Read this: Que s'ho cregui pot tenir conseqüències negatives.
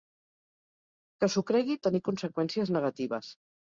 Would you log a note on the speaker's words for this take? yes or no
yes